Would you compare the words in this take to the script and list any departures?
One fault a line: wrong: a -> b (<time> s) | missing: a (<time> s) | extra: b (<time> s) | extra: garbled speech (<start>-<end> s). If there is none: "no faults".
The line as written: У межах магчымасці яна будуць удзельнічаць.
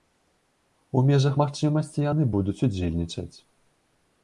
wrong: яна -> яны (2.1 s)